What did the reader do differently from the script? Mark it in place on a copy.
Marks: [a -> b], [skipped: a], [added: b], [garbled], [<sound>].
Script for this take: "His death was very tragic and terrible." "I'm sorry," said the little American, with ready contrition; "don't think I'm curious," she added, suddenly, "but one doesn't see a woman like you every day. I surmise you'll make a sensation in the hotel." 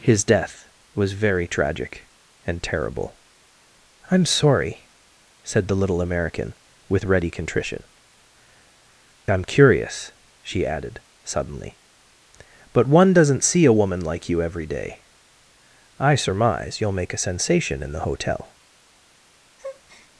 "His death was very tragic and terrible." "I'm sorry," said the little American, with ready contrition; [skipped: "don't think] I'm curious," she added, suddenly, "but one doesn't see a woman like you every day. I surmise you'll make a sensation in the hotel." [breath]